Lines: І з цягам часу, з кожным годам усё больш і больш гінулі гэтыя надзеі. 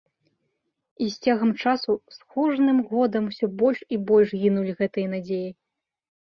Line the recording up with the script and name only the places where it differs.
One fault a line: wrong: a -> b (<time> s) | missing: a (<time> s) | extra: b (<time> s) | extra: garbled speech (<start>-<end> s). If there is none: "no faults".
no faults